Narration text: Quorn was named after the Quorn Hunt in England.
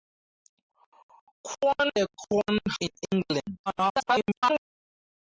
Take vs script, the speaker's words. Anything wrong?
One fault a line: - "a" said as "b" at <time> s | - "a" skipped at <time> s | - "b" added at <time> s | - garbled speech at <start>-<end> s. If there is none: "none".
- "was named after" skipped at 1.9 s
- "Hunt" skipped at 2.6 s
- garbled speech at 3.7-4.6 s